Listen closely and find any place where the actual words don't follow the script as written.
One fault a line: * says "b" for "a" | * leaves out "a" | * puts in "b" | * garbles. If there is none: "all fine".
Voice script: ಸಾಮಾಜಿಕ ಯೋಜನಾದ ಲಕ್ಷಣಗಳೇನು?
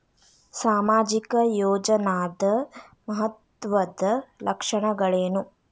* puts in "ಮಹತ್ವದ್ದ"